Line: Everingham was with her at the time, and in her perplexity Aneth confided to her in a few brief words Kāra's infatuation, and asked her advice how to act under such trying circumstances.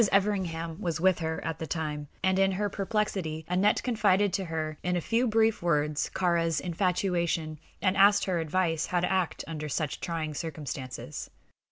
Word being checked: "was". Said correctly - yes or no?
yes